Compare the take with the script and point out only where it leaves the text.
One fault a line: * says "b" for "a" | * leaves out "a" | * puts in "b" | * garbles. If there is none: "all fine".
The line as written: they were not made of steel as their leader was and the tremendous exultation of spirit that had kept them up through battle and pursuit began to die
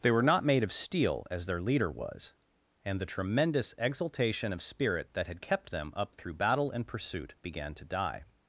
all fine